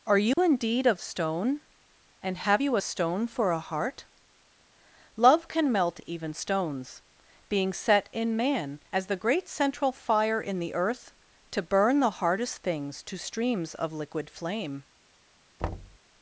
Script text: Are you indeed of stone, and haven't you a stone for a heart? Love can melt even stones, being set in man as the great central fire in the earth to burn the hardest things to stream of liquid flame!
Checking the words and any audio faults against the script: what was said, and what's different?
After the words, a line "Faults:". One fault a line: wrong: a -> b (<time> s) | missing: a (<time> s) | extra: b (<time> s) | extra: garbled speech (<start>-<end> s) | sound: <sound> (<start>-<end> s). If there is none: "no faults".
Are you indeed of stone, and have you a stone for a heart? Love can melt even stones, being set in man as the great central fire in the earth to burn the hardest things to streams of liquid flame!
Faults:
sound: dropout (0.3-0.4 s)
wrong: haven't -> have (2.4 s)
wrong: stream -> streams (13.2 s)
sound: thud (15.6-16.0 s)